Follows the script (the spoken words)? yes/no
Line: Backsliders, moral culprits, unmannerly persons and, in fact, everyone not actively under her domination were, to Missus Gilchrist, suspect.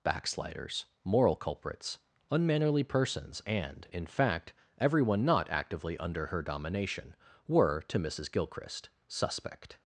yes